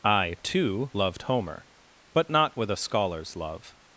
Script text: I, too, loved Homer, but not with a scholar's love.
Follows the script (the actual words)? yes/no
yes